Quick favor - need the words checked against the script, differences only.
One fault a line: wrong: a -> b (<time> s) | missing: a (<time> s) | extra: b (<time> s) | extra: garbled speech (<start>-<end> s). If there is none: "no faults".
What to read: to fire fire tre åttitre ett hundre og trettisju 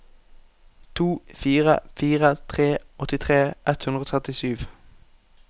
no faults